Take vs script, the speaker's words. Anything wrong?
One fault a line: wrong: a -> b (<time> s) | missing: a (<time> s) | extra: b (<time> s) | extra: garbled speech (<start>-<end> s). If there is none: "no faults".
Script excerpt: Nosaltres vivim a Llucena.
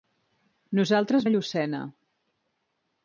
missing: vivim (1.3 s)